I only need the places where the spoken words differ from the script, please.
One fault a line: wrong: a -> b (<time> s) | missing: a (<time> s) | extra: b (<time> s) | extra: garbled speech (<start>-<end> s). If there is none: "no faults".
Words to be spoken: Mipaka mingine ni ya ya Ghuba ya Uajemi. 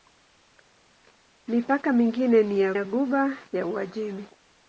no faults